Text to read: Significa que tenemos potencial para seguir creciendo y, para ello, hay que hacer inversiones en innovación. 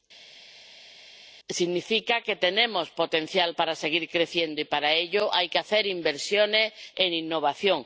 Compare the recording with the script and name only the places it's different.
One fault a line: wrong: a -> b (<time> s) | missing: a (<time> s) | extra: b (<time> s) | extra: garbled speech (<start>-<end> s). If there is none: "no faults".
no faults